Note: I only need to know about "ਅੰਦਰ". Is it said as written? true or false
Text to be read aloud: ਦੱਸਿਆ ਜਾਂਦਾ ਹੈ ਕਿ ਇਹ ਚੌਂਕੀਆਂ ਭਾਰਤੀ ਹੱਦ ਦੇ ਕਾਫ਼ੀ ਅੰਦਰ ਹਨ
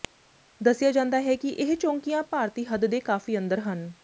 true